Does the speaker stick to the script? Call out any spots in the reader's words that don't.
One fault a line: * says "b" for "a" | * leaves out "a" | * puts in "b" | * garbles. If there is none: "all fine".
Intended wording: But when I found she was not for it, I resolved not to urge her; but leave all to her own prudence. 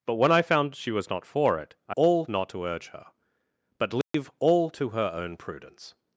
* says "all" for "resolved"